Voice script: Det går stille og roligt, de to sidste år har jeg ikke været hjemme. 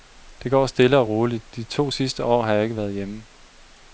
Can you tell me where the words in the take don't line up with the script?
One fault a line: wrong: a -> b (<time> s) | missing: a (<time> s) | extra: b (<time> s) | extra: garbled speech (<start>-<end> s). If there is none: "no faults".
no faults